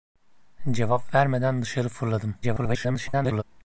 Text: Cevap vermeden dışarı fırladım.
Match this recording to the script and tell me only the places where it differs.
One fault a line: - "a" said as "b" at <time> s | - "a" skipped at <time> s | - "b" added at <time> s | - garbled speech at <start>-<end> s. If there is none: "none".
- garbled speech at 2.4-3.4 s